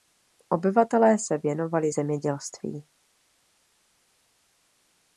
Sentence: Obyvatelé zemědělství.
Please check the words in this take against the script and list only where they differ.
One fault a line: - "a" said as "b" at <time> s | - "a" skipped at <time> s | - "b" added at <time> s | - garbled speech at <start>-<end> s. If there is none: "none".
- "se věnovali" added at 1.2 s